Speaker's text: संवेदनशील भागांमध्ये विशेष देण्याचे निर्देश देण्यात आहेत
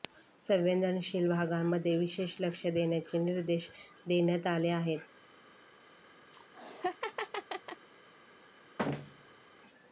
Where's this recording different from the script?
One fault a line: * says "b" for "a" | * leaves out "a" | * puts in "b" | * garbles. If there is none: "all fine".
* puts in "लक्ष"
* puts in "आले"